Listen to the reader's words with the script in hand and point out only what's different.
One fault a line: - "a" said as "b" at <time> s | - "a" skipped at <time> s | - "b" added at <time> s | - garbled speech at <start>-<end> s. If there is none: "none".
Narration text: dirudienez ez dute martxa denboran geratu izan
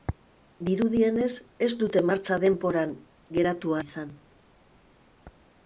none